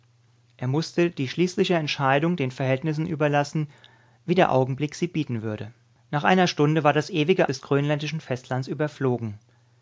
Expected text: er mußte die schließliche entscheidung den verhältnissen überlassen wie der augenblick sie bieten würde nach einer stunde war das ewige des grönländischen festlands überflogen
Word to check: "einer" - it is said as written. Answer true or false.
true